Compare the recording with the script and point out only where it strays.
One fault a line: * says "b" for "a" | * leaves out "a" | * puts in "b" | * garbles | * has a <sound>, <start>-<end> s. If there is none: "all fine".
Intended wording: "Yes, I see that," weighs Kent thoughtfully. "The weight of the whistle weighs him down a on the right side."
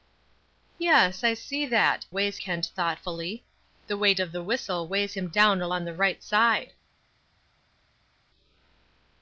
all fine